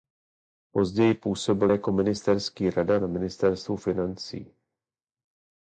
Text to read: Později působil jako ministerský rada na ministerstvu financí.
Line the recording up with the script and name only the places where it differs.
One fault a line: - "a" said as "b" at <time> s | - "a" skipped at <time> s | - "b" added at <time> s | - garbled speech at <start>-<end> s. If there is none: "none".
none